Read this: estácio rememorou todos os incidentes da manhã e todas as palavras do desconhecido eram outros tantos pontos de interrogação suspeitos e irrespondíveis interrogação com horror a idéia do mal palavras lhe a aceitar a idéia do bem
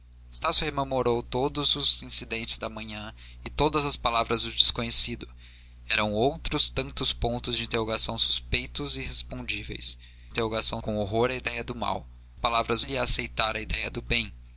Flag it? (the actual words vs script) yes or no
no